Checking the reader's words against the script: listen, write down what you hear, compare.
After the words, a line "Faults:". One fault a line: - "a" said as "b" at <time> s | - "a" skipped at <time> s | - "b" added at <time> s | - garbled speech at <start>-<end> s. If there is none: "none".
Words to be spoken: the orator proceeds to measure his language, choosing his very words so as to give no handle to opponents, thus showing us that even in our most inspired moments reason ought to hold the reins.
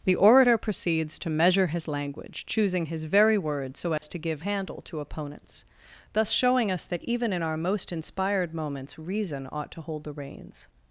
the orator proceeds to measure his language, choosing his very words so as to give handle to opponents, thus showing us that even in our most inspired moments reason ought to hold the reins.
Faults:
- "no" skipped at 4.4 s